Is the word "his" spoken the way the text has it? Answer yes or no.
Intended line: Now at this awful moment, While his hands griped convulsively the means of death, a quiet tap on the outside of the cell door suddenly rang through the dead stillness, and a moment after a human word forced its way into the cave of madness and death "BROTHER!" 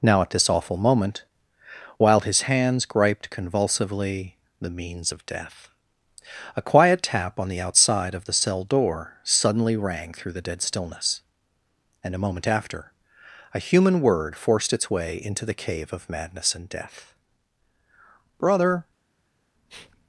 yes